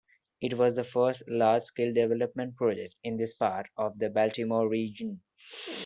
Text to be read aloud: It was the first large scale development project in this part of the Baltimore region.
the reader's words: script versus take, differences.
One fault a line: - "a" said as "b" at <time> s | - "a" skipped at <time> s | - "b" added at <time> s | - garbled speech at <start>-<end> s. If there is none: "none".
none